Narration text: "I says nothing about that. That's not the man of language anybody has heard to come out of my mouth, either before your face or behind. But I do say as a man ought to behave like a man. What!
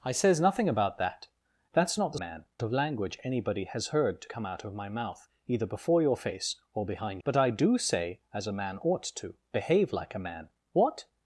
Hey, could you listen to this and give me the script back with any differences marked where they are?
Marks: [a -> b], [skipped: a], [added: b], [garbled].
"I says nothing about that. That's not the man of language anybody has heard to come out of my mouth, either before your face or behind. But I do say as a man ought to behave like a man. What!